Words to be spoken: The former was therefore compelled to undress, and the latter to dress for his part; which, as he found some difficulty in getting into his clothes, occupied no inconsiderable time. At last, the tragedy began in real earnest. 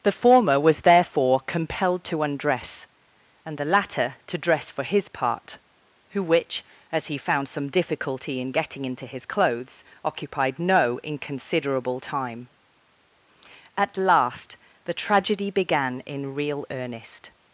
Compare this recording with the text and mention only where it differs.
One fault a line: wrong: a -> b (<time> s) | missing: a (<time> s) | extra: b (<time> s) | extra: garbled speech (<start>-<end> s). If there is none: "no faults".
extra: who (6.1 s)